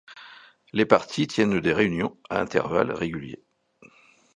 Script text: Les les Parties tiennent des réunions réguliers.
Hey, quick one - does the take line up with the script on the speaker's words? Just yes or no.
no